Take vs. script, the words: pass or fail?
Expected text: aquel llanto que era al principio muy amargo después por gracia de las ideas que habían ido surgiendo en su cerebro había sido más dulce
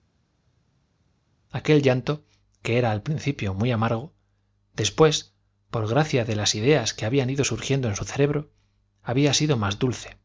pass